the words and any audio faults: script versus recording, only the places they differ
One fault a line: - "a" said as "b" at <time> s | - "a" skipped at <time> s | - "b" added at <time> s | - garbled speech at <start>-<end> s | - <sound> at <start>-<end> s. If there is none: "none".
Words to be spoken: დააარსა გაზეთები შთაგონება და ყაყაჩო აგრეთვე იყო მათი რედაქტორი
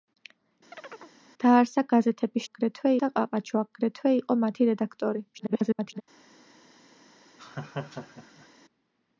- chirp at 0.7-1.2 s
- "შთაგონება" said as "აგრეთვე" at 2.4 s
- garbled speech at 5.3-6.0 s
- laugh at 7.4-8.5 s